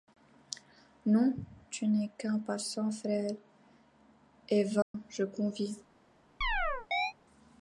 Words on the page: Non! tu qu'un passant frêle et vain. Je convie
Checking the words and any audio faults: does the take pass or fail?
fail